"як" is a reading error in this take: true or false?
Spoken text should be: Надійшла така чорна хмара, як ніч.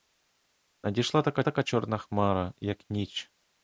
false